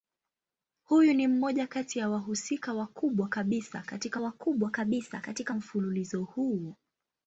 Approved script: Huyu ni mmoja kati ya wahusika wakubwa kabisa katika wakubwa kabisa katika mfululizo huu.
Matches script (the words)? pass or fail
pass